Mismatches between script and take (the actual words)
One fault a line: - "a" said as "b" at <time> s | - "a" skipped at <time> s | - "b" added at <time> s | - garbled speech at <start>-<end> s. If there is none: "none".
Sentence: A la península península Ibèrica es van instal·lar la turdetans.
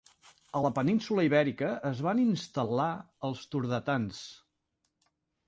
- "península" skipped at 1.2 s
- "la" said as "els" at 3.3 s